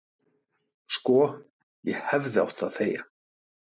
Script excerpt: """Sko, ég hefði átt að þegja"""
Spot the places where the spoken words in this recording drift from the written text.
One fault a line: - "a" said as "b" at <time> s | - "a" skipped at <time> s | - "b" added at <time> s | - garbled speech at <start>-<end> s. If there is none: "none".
none